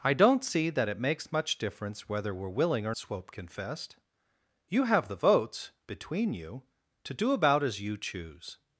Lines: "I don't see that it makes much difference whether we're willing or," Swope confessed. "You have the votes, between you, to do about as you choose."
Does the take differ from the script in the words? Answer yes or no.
no